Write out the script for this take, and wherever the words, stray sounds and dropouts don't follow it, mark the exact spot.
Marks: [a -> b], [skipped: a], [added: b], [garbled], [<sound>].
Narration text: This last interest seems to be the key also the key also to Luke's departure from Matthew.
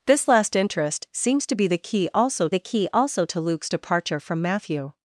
This last interest seems to be the key also the key also to Luke's departure from Matthew.